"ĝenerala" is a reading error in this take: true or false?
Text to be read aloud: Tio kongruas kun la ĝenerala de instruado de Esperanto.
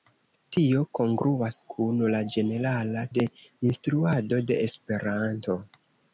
false